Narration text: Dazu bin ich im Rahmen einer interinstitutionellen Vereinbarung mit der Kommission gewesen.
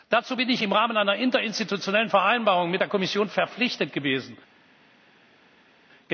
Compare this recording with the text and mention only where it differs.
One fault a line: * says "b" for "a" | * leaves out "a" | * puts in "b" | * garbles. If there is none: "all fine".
* puts in "verpflichtet"